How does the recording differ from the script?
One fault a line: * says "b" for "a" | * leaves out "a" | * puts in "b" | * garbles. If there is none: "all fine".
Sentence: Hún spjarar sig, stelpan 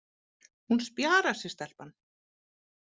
all fine